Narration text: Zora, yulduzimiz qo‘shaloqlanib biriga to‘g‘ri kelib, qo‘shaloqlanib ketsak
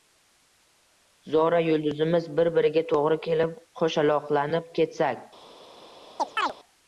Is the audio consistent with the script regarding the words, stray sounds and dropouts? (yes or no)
no